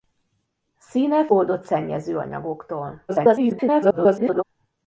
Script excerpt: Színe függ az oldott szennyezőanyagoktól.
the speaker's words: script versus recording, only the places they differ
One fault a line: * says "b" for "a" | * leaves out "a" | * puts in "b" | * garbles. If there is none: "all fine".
* leaves out "függ az"
* garbles